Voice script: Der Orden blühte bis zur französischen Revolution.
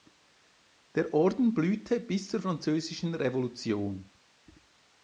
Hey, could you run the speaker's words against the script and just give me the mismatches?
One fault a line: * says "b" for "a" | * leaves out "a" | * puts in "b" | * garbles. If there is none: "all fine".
all fine